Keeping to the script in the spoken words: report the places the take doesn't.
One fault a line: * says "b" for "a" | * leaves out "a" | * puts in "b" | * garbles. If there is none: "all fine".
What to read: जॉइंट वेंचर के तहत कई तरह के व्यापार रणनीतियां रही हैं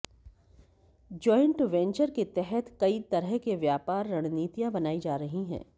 * puts in "बनाई जा"